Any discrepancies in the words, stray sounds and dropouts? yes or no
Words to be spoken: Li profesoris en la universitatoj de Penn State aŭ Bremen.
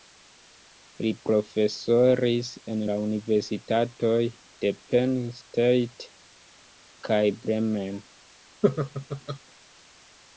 yes